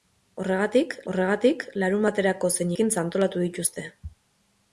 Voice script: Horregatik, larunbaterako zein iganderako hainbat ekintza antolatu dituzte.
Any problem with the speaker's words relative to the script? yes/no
yes